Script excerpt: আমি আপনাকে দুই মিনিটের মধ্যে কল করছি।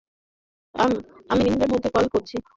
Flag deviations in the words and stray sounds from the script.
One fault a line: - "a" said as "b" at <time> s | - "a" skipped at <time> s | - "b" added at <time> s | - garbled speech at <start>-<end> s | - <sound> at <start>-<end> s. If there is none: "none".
- "আপনাকে দুই" skipped at 1.4 s